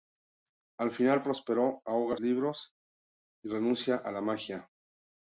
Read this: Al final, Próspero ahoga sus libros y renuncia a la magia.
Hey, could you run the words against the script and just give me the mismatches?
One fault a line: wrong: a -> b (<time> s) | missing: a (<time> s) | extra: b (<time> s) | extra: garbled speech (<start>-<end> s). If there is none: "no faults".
missing: sus (2.2 s)